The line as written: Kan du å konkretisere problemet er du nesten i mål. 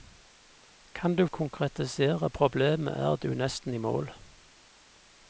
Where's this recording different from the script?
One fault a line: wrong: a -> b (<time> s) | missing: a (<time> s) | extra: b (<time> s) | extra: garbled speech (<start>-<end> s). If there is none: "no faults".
no faults